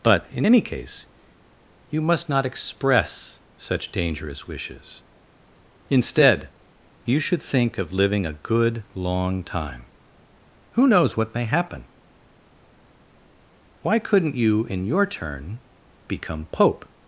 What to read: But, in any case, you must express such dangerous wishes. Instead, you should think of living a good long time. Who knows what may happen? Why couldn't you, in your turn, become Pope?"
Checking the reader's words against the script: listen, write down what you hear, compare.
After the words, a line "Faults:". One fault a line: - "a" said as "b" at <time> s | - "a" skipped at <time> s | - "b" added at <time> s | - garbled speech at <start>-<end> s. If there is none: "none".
But, in any case, you must not express such dangerous wishes. Instead, you should think of living a good long time. Who knows what may happen? Why couldn't you, in your turn, become Pope?"
Faults:
- "not" added at 2.3 s